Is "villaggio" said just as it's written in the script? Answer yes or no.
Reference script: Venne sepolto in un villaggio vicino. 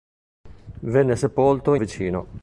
no